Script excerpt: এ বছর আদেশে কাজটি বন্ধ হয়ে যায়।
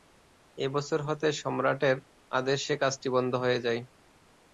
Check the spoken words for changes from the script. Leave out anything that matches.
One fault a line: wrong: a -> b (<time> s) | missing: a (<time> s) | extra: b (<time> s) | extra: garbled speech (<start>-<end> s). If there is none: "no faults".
extra: হতে সম্রাটের (1.1 s)